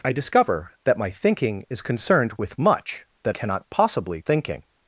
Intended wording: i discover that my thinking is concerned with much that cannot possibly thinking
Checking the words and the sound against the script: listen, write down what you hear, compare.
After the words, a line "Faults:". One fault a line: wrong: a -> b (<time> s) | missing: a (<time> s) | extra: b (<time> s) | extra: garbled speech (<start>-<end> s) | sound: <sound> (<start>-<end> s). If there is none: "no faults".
i discover that my thinking is concerned with much that cannot possibly thinking
Faults:
no faults